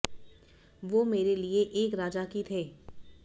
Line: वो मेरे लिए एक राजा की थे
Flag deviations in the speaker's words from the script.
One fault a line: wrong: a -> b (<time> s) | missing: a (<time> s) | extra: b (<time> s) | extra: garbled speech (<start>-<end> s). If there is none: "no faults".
no faults